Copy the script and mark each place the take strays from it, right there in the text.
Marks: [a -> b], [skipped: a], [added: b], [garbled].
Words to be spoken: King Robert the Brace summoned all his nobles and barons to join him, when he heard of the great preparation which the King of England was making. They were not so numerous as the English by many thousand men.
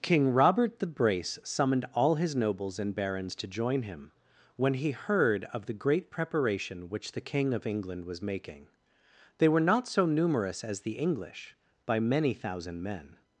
King Robert the Brace summoned all his nobles and barons to join him, when he heard of the great preparation which the King of England was making. They were not so numerous as the English by many thousand men.